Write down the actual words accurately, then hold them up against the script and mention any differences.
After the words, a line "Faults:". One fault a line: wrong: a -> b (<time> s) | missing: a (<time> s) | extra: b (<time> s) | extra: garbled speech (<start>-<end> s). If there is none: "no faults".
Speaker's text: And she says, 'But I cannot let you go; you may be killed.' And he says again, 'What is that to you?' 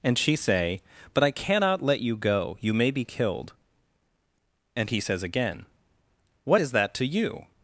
And she say, 'But I cannot let you go; you may be killed.' And he says again, 'What is that to you?'
Faults:
wrong: says -> say (0.3 s)